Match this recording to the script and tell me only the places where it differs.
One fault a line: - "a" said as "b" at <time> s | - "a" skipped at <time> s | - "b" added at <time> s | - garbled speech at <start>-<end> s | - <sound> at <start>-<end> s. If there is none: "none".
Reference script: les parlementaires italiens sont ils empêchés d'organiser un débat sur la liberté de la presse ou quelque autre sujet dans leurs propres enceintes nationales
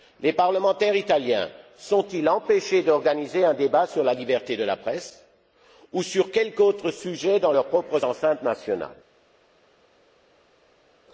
- "sur" added at 6.0 s